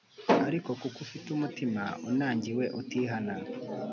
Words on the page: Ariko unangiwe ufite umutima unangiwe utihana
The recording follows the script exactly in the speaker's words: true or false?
false